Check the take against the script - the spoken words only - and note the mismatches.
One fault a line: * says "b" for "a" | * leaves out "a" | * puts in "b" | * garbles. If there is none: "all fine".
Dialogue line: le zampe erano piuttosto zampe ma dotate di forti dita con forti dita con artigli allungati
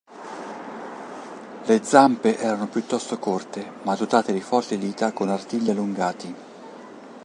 * says "corte" for "zampe"
* leaves out "forti dita con"